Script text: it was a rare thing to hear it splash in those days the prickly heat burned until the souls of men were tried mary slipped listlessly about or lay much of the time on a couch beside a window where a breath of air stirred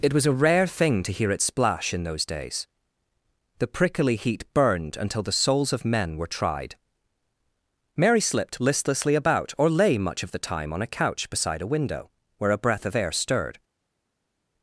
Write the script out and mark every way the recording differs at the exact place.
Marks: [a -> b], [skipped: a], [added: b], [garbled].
it was a rare thing to hear it splash in those days the prickly heat burned until the souls of men were tried mary slipped listlessly about or lay much of the time on a couch beside a window where a breath of air stirred